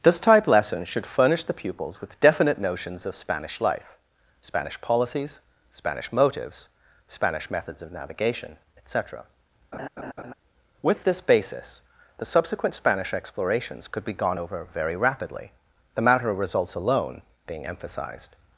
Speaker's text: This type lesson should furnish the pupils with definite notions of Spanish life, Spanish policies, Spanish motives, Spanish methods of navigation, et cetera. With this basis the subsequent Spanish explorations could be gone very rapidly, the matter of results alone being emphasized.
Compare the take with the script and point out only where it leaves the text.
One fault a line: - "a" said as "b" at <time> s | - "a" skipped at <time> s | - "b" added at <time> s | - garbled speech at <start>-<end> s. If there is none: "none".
- "over" added at 14.4 s